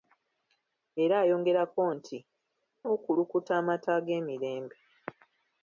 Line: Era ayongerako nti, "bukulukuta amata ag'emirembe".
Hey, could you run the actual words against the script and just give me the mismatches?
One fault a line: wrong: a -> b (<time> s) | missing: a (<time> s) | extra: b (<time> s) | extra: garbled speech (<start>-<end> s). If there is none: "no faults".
no faults